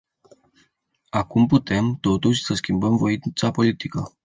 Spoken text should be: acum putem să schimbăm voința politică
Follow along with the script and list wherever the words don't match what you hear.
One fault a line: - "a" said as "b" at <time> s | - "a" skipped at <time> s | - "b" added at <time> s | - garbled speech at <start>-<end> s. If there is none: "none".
- "totuși" added at 2.0 s